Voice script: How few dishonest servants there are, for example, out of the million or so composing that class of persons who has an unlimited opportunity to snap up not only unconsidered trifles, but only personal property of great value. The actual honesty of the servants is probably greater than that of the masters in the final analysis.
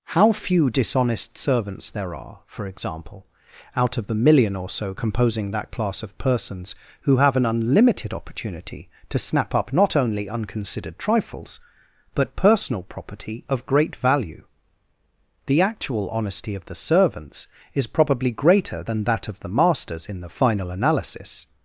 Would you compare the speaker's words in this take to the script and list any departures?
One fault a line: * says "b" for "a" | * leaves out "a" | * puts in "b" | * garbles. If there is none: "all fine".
* says "have" for "has"
* leaves out "only"